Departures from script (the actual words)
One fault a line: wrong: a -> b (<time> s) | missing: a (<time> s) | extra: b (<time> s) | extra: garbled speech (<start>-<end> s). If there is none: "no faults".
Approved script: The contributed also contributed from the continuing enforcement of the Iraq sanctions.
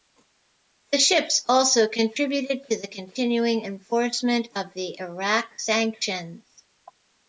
wrong: contributed -> ships (1.0 s)
wrong: from -> to (2.7 s)